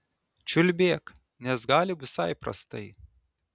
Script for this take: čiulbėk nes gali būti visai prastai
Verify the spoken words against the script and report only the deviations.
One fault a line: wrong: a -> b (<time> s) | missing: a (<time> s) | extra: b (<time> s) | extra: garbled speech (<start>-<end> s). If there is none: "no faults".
missing: būti (2.0 s)